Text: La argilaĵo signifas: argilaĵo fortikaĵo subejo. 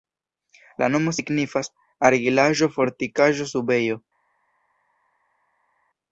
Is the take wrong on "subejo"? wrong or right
right